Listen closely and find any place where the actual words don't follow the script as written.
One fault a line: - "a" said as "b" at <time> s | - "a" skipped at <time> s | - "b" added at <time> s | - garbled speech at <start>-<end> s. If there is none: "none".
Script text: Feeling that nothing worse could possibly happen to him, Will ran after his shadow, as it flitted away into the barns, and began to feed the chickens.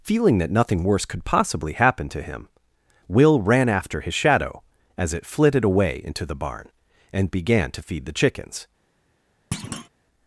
- "barns" said as "barn" at 6.3 s